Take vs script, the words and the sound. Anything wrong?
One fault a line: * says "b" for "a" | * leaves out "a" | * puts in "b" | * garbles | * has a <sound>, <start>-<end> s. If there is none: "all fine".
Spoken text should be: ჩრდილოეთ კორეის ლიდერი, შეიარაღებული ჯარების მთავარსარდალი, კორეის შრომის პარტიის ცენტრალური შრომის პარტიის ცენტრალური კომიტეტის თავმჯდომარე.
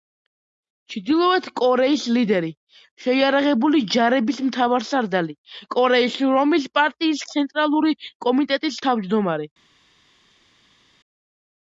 * leaves out "შრომის პარტიის ცენტრალური"